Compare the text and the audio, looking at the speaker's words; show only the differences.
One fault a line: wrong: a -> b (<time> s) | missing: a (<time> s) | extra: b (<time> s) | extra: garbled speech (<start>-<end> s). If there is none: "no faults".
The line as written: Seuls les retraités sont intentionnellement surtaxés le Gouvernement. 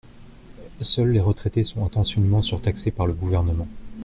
extra: par (2.9 s)